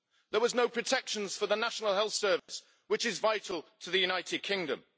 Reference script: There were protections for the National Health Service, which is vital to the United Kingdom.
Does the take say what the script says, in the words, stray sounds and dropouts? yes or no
no